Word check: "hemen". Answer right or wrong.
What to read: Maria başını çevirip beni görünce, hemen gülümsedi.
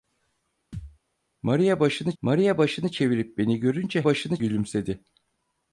wrong